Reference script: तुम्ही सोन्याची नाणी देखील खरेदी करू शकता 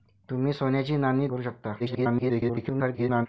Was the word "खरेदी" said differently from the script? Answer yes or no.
yes